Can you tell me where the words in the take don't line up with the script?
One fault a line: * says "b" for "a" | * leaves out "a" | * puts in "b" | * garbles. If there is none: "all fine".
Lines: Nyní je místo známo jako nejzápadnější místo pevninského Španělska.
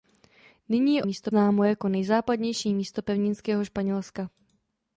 all fine